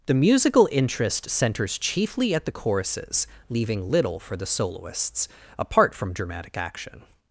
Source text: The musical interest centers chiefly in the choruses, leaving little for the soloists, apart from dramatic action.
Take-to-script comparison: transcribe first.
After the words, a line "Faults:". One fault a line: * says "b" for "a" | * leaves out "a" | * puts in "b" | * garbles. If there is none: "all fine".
The musical interest centers chiefly at the choruses, leaving little for the soloists, apart from dramatic action.
Faults:
* says "at" for "in"